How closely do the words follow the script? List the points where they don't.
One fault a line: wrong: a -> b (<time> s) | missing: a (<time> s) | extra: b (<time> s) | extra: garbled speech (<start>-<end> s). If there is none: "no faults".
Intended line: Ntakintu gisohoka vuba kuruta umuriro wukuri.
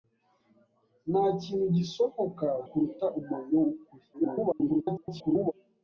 missing: vuba (2.5 s)
extra: garbled speech (4.1-5.5 s)